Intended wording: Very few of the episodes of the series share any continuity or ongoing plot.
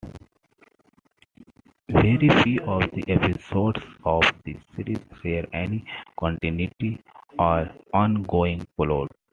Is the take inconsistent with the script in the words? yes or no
no